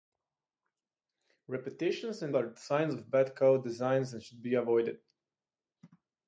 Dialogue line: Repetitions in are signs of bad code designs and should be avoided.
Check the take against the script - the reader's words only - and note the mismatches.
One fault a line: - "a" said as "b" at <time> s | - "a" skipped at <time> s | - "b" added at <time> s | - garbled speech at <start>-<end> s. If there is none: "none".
none